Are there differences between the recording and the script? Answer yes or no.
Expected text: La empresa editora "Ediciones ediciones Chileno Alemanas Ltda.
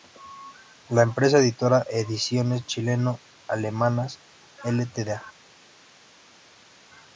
yes